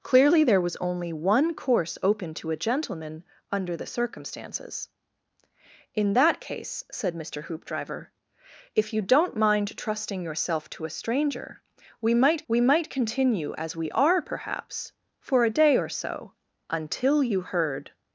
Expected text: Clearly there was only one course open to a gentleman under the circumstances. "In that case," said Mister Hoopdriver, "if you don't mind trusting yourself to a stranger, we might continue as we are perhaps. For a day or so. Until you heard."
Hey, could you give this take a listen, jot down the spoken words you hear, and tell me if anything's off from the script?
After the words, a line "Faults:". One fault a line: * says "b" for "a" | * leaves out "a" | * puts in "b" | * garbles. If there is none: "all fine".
Clearly there was only one course open to a gentleman under the circumstances. "In that case," said Mister Hoopdriver, "if you don't mind trusting yourself to a stranger, we might we might continue as we are perhaps. For a day or so. Until you heard."
Faults:
* puts in "we might"